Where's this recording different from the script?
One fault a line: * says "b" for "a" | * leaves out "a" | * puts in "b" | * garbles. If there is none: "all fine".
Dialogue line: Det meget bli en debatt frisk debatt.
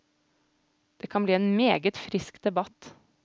* says "kan" for "meget"
* says "meget" for "debatt"